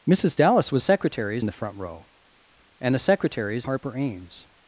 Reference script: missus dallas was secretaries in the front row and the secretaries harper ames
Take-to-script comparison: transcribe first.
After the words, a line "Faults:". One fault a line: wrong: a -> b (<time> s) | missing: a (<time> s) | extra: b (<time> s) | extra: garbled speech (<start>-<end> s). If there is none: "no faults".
missus dallas was secretaries in the front row and the secretaries harper ames
Faults:
no faults